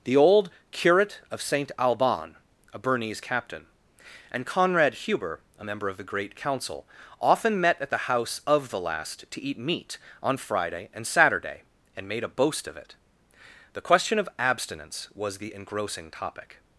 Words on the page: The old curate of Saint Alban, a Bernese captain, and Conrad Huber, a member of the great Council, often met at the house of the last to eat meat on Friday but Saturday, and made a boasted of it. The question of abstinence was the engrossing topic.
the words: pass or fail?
fail